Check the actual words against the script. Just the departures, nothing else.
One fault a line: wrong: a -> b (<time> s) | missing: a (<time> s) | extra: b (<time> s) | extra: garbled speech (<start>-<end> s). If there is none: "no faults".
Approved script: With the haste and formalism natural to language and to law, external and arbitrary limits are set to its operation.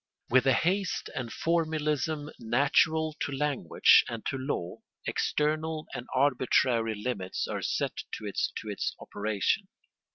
extra: to its (8.6 s)